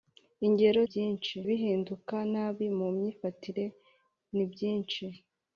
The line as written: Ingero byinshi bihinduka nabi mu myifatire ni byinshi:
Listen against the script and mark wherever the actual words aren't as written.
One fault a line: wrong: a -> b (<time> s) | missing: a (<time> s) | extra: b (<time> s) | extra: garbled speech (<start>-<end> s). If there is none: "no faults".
no faults